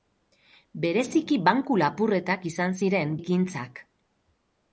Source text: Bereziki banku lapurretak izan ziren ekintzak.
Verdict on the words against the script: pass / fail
pass